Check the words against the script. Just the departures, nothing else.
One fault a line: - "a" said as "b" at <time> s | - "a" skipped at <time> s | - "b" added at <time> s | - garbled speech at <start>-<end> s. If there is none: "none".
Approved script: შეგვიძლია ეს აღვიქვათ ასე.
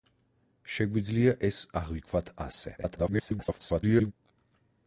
- garbled speech at 2.8-4.1 s